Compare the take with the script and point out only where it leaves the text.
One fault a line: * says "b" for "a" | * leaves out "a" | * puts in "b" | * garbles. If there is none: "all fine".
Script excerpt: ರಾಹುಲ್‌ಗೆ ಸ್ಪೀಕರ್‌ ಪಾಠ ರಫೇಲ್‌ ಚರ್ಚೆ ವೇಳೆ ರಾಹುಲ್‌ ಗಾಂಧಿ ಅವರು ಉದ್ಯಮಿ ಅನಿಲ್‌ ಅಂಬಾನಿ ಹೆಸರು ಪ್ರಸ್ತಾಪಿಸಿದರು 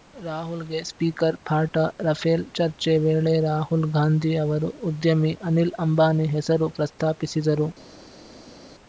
all fine